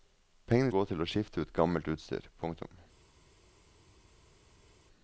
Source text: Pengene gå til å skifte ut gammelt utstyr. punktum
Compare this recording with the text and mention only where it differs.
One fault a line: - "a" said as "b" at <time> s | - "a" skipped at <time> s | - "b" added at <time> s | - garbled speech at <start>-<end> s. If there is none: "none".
none